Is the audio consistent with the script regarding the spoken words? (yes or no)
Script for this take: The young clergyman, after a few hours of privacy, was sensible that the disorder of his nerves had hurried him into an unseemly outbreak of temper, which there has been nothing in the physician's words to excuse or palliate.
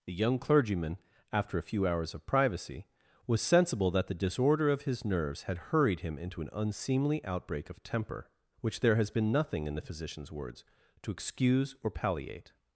yes